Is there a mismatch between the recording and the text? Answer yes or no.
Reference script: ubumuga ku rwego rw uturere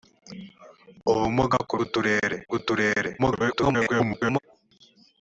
yes